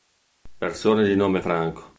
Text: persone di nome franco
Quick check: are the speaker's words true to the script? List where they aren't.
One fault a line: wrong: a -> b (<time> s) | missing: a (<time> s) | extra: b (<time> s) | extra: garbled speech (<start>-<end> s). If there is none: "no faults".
no faults